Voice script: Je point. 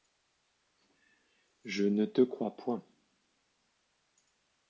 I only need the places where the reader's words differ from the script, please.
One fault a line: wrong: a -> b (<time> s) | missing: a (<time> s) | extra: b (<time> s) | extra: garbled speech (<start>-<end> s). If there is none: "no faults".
extra: ne te crois (1.8 s)